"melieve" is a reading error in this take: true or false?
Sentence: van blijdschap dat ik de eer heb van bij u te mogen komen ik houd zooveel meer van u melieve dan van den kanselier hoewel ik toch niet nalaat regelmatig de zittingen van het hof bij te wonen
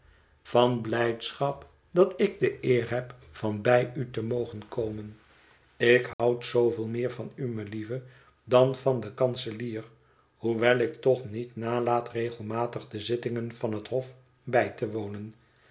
false